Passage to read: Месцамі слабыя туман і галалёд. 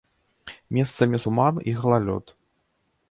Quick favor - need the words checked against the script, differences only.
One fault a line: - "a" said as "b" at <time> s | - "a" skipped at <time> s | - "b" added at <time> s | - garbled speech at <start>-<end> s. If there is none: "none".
- "слабыя" skipped at 1.2 s